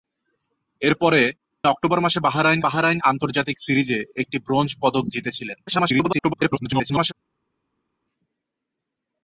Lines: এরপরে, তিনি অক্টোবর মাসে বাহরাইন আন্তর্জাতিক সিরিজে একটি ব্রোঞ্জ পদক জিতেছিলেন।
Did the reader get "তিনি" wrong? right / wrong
wrong